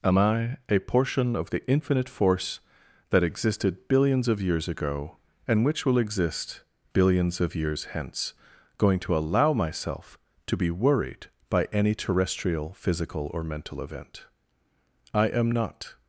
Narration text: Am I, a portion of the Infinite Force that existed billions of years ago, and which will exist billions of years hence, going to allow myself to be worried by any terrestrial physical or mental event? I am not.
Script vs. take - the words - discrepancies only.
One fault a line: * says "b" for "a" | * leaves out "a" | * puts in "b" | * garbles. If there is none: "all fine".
all fine